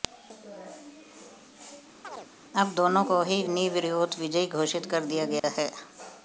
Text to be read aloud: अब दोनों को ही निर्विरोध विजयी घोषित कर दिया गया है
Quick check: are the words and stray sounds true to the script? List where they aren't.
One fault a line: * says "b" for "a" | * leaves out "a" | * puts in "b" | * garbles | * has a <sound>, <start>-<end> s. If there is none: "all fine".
* has a chirp, 2.0-2.3 s
* has a dropout, 5.4-5.4 s